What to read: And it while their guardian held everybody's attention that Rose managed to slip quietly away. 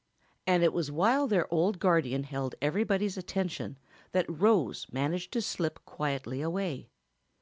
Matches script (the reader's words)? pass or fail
fail